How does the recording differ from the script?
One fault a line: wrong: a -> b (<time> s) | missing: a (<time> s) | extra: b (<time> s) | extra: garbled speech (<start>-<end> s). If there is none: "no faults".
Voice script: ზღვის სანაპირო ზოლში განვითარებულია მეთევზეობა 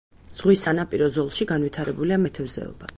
no faults